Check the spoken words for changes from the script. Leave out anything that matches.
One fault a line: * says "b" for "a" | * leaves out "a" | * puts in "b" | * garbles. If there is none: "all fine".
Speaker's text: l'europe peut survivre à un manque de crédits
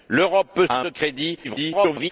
* leaves out "survivre"
* leaves out "manque"
* garbles